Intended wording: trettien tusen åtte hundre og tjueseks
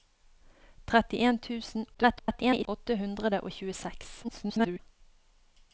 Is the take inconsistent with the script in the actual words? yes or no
yes